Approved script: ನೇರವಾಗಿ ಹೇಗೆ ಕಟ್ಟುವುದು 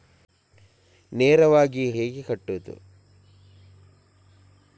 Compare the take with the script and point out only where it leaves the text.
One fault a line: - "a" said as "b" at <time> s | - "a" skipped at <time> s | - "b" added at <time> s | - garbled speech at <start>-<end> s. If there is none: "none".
none